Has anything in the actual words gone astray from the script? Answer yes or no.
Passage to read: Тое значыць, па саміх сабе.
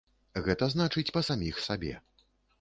yes